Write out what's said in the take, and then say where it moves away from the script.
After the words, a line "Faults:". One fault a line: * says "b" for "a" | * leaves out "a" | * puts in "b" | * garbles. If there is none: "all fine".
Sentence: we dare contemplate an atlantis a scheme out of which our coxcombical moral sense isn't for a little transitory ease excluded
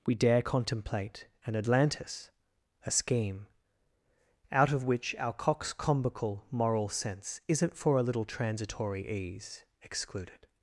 we dare contemplate an atlantis a scheme out of which our coxcombical moral sense isn't for a little transitory ease excluded
Faults:
all fine